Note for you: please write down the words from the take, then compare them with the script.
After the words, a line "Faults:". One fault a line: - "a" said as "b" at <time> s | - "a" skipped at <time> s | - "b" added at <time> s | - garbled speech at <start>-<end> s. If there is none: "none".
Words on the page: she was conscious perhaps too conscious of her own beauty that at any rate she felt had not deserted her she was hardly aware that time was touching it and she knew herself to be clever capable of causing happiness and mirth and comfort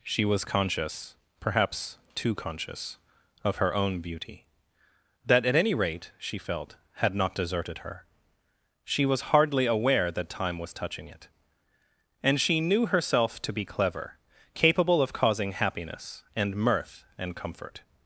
she was conscious perhaps too conscious of her own beauty that at any rate she felt had not deserted her she was hardly aware that time was touching it and she knew herself to be clever capable of causing happiness and mirth and comfort
Faults:
none